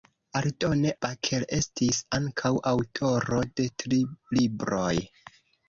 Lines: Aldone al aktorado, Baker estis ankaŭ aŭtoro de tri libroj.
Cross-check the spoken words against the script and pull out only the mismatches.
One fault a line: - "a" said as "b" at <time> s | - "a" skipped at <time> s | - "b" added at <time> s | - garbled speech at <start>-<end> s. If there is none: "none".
- "al aktorado" skipped at 0.9 s